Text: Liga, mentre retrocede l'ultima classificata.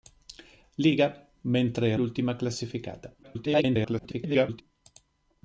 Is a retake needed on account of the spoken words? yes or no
yes